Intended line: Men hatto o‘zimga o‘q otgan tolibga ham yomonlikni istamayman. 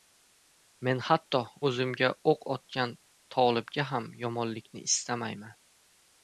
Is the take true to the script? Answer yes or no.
yes